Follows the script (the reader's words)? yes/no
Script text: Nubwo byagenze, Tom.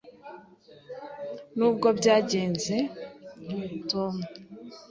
yes